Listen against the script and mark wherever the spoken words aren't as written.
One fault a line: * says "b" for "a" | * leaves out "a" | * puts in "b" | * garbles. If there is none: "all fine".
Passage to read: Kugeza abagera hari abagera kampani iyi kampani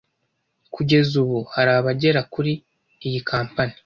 * says "ubu" for "abagera"
* says "kuri" for "kampani"